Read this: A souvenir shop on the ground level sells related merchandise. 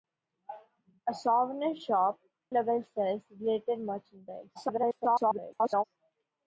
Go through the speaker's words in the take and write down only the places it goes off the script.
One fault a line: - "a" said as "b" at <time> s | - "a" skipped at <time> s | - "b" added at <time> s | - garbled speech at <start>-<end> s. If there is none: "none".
- "on the ground" skipped at 2.2 s
- garbled speech at 4.5-5.8 s